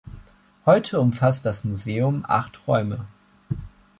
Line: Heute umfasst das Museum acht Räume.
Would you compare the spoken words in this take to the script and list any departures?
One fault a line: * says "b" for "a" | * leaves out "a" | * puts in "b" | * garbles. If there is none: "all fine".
all fine